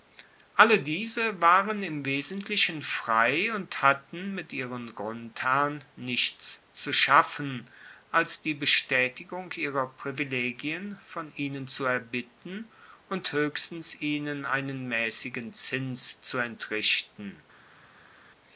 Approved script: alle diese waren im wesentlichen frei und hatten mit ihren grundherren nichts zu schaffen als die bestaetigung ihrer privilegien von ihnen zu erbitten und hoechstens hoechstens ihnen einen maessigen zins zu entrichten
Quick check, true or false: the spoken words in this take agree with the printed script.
false